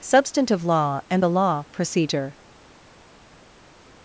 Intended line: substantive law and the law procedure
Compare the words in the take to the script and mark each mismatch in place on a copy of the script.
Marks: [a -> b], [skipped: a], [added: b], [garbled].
substantive law and the law procedure